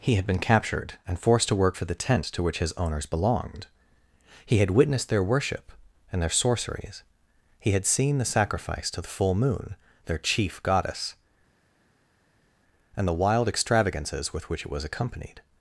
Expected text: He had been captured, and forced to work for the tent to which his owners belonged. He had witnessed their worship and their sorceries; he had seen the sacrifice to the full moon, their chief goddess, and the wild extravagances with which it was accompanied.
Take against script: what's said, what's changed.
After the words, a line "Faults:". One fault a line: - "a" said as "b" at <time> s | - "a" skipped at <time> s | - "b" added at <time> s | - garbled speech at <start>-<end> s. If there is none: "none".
He had been captured, and forced to work for the tent to which his owners belonged. He had witnessed their worship and their sorceries; he had seen the sacrifice to the full moon, their chief goddess, and the wild extravagances with which it was accompanied.
Faults:
none